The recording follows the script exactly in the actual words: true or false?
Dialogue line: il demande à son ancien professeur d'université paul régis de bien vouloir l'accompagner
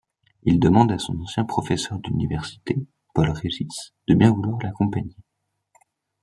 true